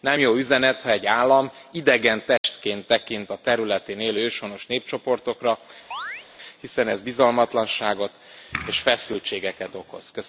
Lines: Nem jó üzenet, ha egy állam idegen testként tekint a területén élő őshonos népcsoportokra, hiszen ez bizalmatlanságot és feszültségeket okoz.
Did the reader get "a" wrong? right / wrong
right